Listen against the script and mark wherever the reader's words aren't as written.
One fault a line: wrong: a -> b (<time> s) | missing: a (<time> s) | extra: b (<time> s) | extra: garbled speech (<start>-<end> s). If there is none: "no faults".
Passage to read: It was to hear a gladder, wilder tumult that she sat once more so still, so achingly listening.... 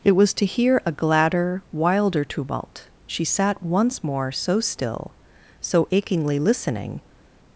missing: that (2.9 s)